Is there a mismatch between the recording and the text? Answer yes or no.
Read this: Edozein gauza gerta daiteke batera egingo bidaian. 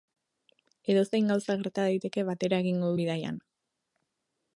no